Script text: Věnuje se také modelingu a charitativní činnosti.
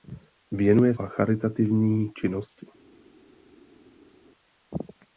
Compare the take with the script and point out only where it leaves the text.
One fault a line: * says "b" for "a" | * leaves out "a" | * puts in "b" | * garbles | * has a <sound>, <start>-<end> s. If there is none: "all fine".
* leaves out "se také modelingu"